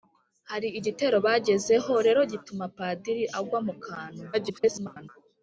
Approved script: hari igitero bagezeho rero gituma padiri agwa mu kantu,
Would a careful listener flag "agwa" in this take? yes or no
no